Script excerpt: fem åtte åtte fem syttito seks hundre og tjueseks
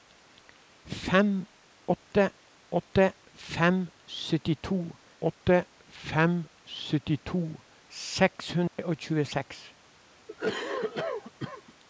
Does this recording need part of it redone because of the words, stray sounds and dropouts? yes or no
yes